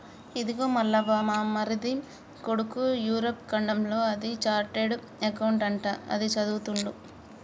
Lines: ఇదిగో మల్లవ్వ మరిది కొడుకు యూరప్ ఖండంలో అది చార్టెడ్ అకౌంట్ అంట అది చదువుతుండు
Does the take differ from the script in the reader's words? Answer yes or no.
yes